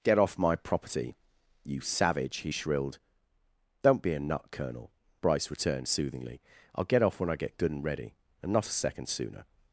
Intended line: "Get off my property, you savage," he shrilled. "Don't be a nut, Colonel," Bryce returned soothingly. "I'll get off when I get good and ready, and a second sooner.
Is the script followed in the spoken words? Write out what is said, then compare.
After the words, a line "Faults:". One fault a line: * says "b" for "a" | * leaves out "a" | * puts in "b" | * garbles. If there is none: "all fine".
"Get off my property, you savage," he shrilled. "Don't be a nut, Colonel," Bryce returned soothingly. "I'll get off when I get good and ready, and not a second sooner.
Faults:
* puts in "not"